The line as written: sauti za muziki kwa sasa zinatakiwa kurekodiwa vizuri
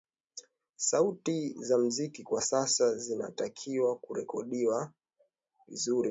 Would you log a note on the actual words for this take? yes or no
no